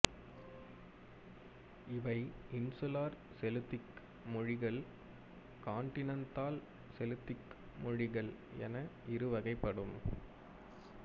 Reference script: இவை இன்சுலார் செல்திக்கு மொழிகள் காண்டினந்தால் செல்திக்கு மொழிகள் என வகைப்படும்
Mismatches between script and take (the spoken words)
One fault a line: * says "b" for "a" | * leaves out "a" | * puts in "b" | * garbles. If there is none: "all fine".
* puts in "இரு"